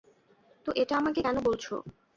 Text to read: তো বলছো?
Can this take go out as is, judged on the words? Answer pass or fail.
fail